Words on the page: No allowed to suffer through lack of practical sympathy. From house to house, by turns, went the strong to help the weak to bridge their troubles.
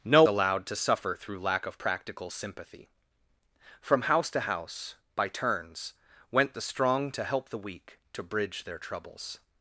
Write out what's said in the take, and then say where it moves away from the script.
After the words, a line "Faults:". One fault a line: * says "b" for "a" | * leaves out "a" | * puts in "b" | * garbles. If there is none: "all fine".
No allowed to suffer through lack of practical sympathy. From house to house, by turns, went the strong to help the weak to bridge their troubles.
Faults:
all fine